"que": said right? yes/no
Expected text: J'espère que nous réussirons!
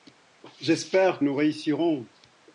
no